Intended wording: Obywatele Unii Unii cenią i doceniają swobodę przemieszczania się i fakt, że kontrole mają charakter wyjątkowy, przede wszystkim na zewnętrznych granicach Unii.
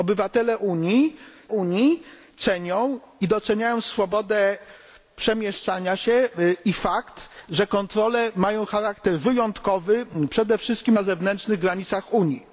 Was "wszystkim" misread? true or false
false